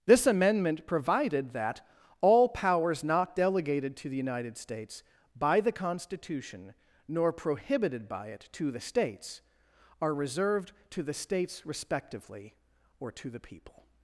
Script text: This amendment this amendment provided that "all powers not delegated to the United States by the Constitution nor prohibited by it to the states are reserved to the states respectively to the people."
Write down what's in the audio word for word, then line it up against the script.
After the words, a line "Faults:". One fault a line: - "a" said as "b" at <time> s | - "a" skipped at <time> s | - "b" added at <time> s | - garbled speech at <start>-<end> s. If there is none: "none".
This amendment provided that "all powers not delegated to the United States by the Constitution nor prohibited by it to the states are reserved to the states respectively or to the people."
Faults:
- "this amendment" skipped at 0.9 s
- "or" added at 13.0 s